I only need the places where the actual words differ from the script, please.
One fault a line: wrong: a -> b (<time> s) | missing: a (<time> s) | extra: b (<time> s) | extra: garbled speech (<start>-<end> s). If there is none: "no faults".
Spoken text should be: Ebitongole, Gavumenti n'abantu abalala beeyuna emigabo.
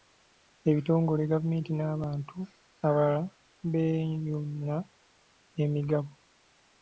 no faults